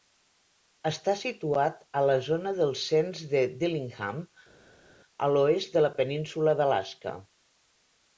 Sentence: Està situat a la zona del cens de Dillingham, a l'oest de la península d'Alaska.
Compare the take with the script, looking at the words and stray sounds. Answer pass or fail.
pass